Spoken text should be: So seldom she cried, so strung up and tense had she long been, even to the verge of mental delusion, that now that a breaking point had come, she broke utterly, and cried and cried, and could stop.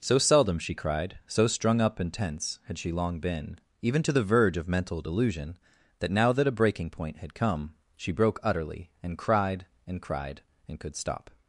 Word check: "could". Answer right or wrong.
right